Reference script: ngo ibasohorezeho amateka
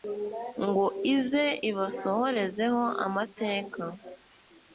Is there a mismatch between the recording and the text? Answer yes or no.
yes